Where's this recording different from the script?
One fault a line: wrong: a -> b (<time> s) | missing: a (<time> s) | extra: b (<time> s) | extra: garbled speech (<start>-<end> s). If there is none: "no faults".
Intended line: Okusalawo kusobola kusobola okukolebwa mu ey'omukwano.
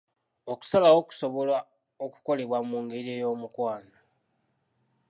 missing: kusobola (1.6 s)
extra: ngeri (2.8 s)